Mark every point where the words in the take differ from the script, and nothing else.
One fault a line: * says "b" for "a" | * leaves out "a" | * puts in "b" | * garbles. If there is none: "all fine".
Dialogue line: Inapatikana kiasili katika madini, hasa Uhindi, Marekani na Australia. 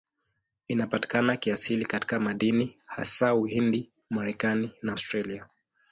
all fine